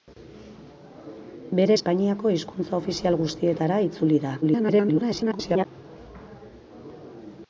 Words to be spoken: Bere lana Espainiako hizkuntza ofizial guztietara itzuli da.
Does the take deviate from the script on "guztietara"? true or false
false